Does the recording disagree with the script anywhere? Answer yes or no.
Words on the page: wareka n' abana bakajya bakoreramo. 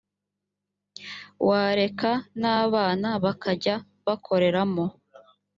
no